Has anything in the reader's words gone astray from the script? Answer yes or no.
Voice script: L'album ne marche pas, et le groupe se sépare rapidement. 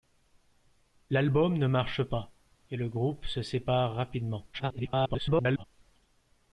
yes